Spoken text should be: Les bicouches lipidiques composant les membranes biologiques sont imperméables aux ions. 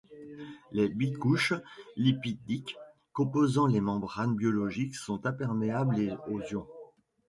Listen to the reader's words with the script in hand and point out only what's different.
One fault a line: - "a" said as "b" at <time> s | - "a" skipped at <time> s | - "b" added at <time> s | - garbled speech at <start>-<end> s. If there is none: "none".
none